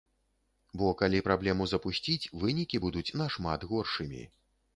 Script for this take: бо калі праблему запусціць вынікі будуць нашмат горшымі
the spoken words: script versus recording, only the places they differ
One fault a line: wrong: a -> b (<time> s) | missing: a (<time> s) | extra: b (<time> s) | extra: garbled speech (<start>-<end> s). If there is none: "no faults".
no faults